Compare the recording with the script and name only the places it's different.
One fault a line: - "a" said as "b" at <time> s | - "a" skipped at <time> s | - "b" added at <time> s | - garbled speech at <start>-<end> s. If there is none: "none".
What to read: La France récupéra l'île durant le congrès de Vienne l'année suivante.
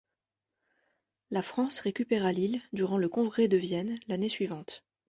none